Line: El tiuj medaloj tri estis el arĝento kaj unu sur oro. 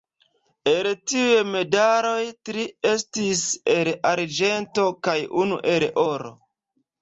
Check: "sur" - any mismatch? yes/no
yes